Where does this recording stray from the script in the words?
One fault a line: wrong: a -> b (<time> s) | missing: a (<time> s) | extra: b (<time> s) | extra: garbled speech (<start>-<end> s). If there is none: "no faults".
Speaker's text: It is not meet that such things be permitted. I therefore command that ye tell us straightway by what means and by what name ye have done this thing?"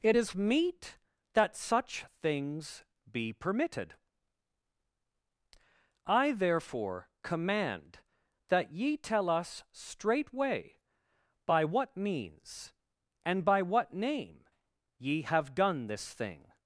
missing: not (0.3 s)